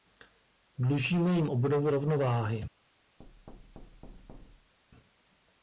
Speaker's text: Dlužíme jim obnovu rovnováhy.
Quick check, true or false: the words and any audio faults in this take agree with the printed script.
false